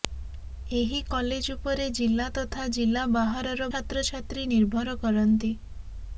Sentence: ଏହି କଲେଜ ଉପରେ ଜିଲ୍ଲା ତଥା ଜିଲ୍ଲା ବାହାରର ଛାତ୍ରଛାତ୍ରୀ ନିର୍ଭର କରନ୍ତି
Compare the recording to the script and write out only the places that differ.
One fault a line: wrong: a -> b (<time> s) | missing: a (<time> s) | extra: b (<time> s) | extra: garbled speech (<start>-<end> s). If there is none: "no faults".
no faults